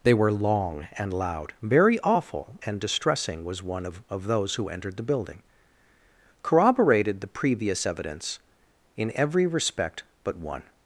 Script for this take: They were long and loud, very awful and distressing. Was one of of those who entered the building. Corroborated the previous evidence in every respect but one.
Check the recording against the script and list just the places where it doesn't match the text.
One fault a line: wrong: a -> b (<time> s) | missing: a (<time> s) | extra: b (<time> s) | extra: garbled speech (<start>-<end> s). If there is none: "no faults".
no faults